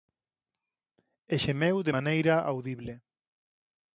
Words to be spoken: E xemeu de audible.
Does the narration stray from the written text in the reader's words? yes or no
yes